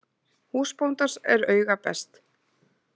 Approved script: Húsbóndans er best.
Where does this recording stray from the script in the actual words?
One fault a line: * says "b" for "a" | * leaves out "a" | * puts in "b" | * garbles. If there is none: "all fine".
* puts in "auga"